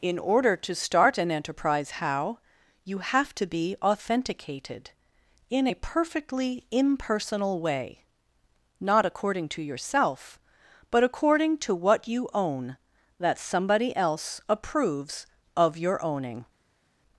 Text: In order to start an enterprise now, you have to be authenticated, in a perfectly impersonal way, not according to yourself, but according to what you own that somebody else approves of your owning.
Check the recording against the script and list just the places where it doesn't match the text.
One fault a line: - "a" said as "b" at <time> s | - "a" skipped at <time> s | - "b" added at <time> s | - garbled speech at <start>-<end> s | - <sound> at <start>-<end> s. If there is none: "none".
- "now" said as "how" at 1.9 s